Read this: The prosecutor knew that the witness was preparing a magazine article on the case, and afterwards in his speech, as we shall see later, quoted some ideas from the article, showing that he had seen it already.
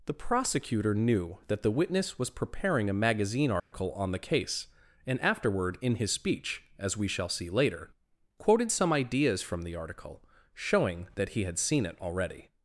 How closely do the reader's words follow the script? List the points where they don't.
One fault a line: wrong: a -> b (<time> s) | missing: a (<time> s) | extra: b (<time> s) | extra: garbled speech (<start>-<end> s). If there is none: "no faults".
wrong: afterwards -> afterward (5.2 s)